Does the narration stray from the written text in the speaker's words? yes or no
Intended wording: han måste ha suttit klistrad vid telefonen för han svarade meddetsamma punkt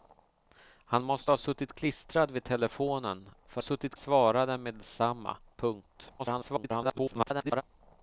yes